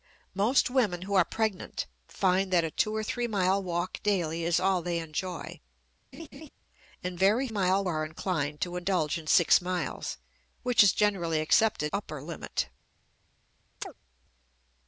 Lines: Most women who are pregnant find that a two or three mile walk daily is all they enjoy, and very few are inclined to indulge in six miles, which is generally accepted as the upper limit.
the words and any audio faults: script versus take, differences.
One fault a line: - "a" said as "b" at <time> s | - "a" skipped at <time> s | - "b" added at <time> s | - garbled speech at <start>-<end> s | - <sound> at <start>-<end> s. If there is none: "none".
- laugh at 6.1-6.5 s
- "few" said as "mile" at 7.5 s
- "as the" skipped at 11.9 s
- chirp at 13.8-13.9 s